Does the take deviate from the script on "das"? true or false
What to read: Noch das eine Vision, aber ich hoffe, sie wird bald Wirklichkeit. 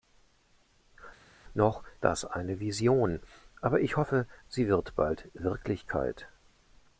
false